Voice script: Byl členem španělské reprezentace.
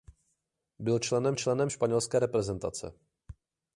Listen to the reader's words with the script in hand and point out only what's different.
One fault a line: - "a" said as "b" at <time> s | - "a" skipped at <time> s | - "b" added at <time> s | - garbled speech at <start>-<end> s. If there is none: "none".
- "členem" added at 1.3 s